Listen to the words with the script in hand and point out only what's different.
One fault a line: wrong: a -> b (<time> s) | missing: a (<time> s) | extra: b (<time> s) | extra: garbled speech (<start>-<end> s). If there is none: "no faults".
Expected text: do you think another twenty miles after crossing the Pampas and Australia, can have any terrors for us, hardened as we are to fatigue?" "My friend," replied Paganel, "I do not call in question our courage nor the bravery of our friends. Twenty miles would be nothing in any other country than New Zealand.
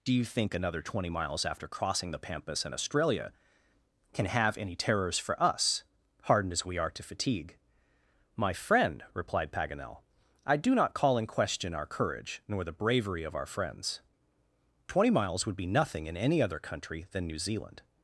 no faults